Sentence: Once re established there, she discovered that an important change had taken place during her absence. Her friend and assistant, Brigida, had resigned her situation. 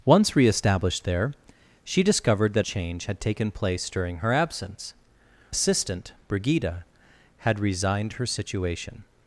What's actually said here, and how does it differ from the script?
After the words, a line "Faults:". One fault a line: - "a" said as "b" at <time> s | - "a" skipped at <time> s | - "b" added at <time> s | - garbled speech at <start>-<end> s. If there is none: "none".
Once re established there, she discovered that change had taken place during her absence. Assistant, Brigida, had resigned her situation.
Faults:
- "an important" skipped at 2.6 s
- "Her friend and" skipped at 4.9 s